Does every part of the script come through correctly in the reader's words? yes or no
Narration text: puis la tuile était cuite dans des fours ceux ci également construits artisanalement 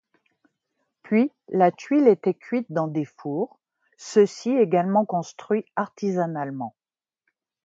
yes